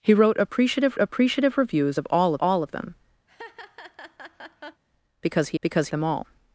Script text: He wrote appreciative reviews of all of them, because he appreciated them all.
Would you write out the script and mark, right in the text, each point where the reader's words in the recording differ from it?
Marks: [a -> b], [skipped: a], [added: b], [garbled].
He wrote appreciative [added: appreciative] reviews of all [added: all] of them, because he [appreciated -> because] them all.